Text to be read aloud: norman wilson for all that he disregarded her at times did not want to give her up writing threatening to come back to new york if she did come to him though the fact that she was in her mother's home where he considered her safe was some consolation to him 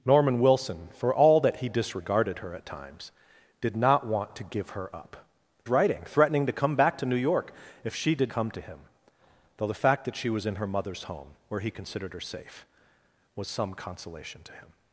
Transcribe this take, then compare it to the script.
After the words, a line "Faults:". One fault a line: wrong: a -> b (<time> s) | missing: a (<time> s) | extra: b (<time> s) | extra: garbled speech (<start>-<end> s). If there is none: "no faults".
norman wilson for all that he disregarded her at times did not want to give her up writing threatening to come back to new york if she did come to him though the fact that she was in her mother's home where he considered her safe was some consolation to him
Faults:
no faults